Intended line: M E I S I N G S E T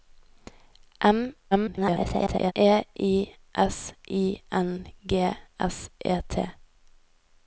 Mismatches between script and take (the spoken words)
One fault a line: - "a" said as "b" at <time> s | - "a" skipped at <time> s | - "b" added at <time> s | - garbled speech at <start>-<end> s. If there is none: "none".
- garbled speech at 1.5-2.5 s